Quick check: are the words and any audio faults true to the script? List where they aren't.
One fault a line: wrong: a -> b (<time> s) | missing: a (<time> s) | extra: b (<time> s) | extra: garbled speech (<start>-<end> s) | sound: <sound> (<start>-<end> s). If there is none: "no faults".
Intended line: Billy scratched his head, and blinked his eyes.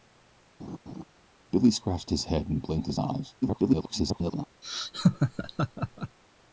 sound: laugh (0.6-1.0 s)
extra: garbled speech (3.4-4.5 s)
sound: laugh (4.6-6.2 s)